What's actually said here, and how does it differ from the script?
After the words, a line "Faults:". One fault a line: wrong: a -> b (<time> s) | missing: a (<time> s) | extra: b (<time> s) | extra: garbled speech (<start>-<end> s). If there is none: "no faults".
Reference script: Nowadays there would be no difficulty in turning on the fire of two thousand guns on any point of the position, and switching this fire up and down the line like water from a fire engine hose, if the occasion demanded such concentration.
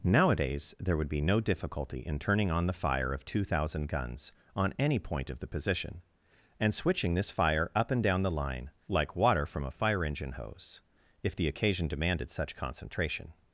Nowadays there would be no difficulty in turning on the fire of two thousand guns on any point of the position, and switching this fire up and down the line like water from a fire engine hose, if the occasion demanded such concentration.
Faults:
no faults